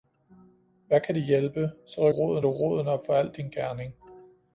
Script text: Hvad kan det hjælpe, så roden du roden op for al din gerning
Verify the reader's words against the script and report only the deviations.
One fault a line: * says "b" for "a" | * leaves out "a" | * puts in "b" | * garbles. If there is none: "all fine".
all fine